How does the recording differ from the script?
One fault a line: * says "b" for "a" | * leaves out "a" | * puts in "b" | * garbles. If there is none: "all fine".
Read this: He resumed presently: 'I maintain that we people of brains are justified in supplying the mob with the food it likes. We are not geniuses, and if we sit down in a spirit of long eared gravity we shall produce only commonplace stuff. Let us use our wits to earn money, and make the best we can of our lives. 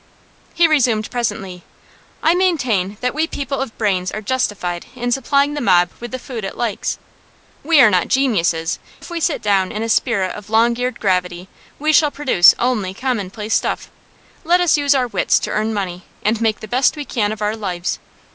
* leaves out "and"